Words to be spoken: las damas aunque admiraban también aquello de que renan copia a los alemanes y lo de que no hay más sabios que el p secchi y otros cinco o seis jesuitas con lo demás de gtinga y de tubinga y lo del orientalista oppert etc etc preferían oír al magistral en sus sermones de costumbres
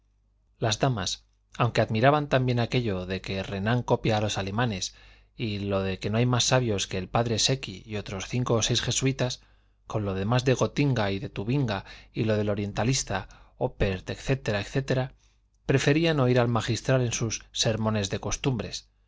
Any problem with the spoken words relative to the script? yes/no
no